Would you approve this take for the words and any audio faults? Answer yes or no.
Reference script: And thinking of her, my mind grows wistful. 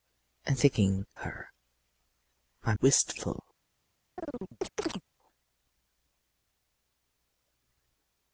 no